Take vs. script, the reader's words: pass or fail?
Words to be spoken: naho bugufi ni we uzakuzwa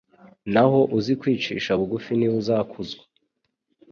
fail